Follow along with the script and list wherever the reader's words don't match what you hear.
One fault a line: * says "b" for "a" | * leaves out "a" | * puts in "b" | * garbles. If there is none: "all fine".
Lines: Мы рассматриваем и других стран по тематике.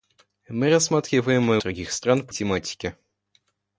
all fine